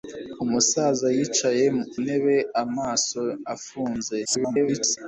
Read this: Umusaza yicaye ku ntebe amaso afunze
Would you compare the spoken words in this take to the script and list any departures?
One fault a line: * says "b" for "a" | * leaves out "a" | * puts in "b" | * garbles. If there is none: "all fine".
* leaves out "ku"
* garbles